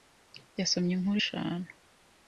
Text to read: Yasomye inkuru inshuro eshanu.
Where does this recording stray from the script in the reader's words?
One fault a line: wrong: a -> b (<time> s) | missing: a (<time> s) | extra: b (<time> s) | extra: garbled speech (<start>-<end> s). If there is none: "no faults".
missing: inshuro (1.2 s)